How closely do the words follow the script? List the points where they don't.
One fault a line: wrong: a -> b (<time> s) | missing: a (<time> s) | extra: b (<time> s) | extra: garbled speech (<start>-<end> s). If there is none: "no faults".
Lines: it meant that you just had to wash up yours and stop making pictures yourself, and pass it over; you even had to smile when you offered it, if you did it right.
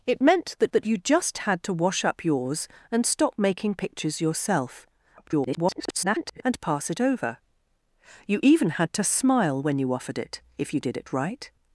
extra: that (0.7 s)
extra: garbled speech (5.2-6.4 s)